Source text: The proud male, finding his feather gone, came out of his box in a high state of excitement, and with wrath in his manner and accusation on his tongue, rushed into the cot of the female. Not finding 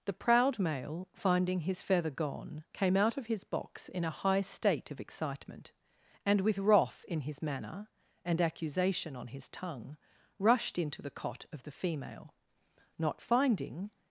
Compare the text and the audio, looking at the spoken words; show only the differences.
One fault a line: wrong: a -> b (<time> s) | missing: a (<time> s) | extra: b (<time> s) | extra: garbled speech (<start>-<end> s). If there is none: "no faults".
no faults